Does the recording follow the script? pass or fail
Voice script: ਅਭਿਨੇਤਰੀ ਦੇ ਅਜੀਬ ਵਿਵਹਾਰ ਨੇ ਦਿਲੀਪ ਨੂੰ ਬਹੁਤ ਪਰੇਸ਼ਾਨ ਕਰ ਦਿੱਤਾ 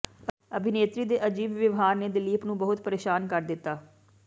pass